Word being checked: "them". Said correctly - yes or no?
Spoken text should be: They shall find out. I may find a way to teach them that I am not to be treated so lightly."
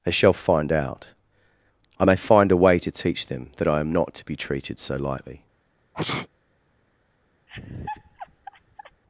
yes